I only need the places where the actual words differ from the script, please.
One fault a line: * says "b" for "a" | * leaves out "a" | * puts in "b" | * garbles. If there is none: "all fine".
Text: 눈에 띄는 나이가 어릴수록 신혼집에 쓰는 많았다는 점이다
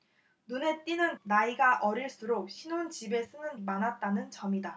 all fine